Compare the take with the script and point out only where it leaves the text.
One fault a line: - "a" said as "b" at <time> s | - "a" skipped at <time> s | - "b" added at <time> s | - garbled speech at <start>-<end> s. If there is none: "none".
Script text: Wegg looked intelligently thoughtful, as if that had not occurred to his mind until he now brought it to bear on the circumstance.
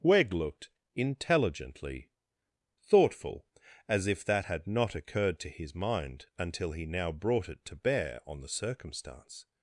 none